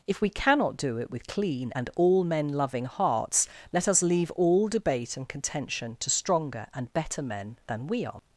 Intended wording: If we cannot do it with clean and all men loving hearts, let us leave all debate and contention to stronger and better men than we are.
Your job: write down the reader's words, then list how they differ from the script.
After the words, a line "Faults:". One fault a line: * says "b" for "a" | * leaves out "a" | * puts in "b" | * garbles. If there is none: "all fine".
If we cannot do it with clean and all men loving hearts, let us leave all debate and contention to stronger and better men than we are.
Faults:
all fine